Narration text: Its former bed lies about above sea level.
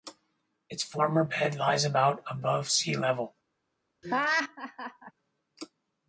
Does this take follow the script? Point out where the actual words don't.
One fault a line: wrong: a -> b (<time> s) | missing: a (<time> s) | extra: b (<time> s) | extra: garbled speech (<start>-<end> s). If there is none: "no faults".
no faults